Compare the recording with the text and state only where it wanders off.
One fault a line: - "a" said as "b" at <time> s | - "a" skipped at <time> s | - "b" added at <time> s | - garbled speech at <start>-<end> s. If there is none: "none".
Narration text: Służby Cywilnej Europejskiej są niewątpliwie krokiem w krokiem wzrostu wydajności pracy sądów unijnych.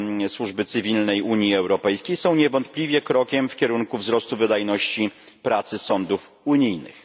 - "Unii" added at 1.2 s
- "krokiem" said as "kierunku" at 3.6 s